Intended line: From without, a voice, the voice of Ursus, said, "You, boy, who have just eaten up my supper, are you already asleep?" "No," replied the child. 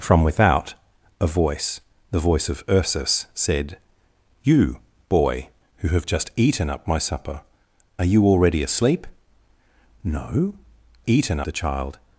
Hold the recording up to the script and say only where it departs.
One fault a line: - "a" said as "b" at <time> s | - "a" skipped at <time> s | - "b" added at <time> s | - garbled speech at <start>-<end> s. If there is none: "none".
- "replied" said as "eaten" at 11.1 s